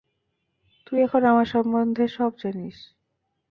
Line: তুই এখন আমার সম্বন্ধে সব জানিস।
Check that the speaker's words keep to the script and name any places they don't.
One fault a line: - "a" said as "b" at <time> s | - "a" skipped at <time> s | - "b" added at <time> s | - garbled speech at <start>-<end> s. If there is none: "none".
none